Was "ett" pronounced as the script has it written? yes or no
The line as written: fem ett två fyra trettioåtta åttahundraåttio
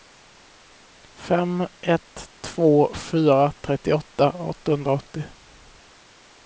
yes